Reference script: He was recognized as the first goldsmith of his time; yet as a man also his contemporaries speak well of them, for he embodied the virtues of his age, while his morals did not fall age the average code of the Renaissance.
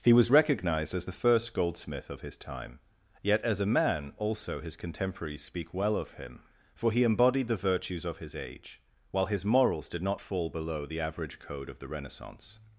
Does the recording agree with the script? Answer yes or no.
no